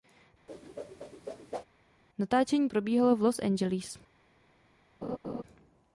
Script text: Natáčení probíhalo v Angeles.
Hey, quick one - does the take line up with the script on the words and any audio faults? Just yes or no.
no